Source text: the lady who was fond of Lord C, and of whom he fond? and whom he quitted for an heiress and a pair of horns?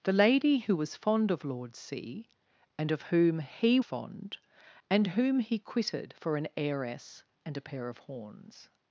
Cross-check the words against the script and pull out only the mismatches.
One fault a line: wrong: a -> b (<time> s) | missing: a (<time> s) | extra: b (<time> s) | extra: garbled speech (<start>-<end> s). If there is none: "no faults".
no faults